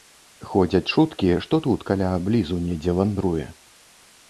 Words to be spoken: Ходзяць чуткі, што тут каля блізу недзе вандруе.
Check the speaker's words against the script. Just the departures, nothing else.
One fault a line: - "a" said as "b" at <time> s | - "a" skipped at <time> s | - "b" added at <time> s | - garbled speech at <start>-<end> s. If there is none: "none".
none